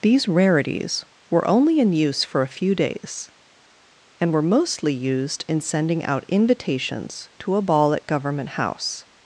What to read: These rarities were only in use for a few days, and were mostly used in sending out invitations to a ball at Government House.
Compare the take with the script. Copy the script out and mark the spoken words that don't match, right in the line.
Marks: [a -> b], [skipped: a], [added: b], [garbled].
These rarities were only in use for a few days, and were mostly used in sending out invitations to a ball at Government House.